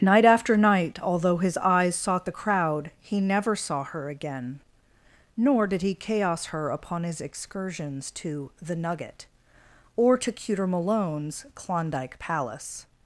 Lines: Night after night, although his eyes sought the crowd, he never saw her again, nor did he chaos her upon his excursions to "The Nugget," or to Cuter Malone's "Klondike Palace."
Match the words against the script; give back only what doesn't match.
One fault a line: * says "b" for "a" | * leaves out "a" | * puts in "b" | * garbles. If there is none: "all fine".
all fine